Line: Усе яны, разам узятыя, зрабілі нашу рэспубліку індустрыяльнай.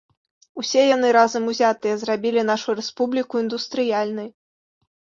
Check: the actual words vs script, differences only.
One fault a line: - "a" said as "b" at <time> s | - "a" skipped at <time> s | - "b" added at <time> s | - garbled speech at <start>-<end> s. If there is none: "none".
none